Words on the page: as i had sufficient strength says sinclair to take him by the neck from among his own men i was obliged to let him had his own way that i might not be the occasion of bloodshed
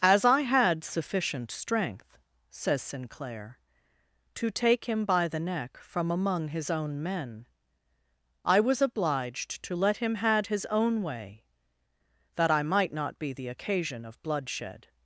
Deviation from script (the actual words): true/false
false